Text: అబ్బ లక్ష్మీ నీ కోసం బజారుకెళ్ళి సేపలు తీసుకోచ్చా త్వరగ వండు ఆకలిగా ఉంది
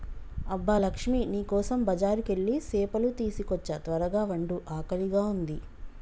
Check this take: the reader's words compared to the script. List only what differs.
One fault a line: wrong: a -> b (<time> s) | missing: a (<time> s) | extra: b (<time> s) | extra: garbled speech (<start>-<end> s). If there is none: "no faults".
no faults